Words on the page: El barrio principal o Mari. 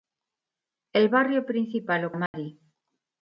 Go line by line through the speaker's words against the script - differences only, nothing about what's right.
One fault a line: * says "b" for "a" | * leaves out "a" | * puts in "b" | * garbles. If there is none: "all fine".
all fine